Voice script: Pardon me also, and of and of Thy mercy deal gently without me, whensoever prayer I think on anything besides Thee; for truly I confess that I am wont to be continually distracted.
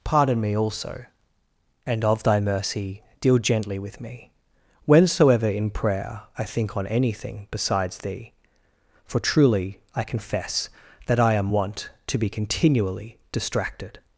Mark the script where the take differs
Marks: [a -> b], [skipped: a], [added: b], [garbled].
Pardon me also, and of [skipped: and of] Thy mercy deal gently [without -> with] me, whensoever [added: in] prayer I think on anything besides Thee; for truly I confess that I am wont to be continually distracted.